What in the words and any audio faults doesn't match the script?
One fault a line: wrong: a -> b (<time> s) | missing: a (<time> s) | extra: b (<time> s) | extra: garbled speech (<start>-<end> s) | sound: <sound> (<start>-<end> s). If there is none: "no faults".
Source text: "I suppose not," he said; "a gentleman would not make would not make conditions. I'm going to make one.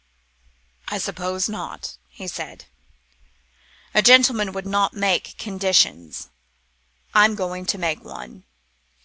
missing: would not make (5.4 s)